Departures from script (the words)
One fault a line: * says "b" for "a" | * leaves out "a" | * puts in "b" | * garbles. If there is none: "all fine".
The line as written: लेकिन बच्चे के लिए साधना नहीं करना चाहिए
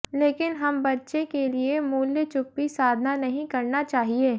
* puts in "हम"
* puts in "मूल्य चुप्पी"